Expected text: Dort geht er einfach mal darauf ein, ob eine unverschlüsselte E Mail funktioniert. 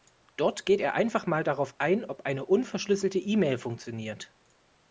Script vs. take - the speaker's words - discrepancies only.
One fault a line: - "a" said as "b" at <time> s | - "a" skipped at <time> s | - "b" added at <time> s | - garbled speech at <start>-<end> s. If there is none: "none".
none